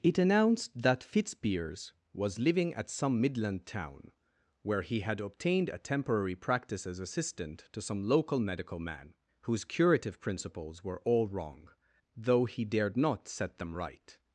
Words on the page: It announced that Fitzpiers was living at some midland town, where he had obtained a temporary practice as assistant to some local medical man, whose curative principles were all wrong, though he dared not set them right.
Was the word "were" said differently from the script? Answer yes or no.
no